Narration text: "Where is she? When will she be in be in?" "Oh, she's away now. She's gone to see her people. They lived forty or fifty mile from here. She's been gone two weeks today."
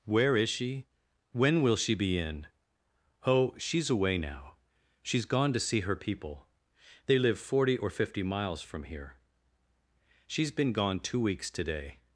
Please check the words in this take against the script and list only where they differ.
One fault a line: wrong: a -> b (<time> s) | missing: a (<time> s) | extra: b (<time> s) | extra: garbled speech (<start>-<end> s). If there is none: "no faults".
missing: be in (2.5 s)
wrong: lived -> live (7.2 s)
wrong: mile -> miles (8.2 s)